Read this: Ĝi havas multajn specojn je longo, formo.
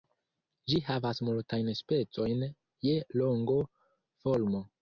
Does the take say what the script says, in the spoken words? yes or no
yes